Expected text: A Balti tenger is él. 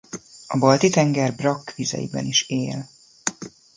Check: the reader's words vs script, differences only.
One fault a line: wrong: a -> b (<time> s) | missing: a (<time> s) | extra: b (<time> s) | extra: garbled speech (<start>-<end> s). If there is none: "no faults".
extra: brakkvizeiben (1.3 s)